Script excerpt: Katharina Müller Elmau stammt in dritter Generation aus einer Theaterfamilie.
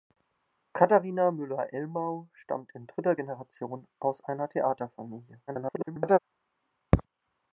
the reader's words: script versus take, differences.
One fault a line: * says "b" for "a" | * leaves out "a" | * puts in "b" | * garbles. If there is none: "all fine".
* garbles